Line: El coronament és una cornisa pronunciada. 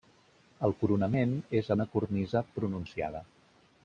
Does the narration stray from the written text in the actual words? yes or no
no